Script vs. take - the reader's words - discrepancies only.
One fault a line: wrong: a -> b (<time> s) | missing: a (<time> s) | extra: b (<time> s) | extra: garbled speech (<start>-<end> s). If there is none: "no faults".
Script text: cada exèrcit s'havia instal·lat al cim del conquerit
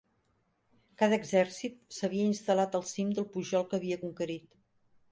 extra: pujol que havia (3.4 s)